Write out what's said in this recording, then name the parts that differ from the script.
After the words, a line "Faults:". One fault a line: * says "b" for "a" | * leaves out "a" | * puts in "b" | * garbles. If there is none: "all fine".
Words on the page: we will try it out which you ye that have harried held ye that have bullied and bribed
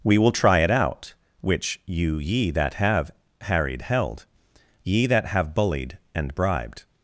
we will try it out which you ye that have harried held ye that have bullied and bribed
Faults:
all fine